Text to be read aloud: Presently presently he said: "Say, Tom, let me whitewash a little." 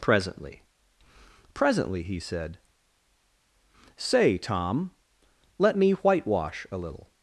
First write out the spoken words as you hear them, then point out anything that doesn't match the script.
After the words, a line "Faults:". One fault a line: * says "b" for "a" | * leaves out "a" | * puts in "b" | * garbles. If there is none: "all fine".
Presently presently he said: "Say, Tom, let me whitewash a little."
Faults:
all fine